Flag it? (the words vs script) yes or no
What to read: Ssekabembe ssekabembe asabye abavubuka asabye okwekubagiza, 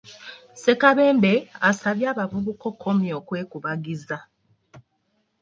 yes